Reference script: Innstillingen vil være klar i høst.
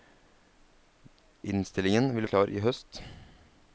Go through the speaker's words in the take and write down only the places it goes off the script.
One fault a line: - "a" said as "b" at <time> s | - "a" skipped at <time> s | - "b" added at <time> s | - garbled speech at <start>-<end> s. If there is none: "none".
- "være" skipped at 2.3 s